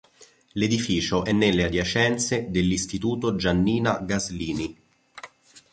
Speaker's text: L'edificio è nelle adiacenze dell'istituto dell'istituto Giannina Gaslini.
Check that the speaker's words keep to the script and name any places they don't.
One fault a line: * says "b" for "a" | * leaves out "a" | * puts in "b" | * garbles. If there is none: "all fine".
* leaves out "dell'istituto"